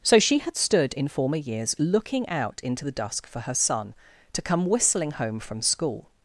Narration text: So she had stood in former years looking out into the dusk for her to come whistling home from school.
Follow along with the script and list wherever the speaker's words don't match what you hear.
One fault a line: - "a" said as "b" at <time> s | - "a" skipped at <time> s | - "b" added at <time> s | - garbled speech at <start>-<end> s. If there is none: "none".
- "son" added at 3.5 s